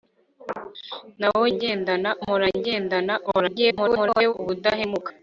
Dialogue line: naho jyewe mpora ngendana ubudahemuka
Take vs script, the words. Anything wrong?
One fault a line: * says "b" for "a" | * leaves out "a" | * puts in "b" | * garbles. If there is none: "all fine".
* says "ngendana" for "jyewe"
* garbles